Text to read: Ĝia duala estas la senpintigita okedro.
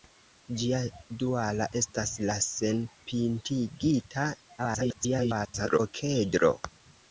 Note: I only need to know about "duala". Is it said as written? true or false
true